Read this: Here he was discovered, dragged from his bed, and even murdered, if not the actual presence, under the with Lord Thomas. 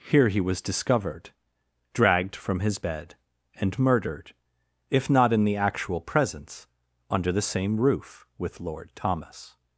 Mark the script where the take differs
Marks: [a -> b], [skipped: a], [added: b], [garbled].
Here he was discovered, dragged from his bed, and [skipped: even] murdered, if not [added: in] the actual presence, under the [added: same roof] with Lord Thomas.